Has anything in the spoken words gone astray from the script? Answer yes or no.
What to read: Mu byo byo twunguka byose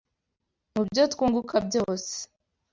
yes